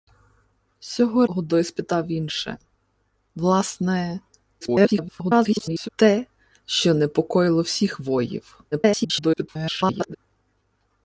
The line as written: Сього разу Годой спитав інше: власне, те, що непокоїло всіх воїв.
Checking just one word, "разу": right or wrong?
wrong